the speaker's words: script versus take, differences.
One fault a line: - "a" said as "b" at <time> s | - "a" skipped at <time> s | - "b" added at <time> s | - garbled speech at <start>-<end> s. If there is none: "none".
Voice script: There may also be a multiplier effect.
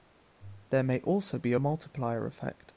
none